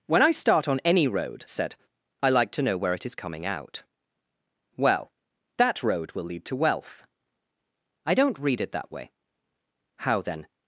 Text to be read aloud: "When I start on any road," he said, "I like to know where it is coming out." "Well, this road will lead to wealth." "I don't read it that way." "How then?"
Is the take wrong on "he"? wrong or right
wrong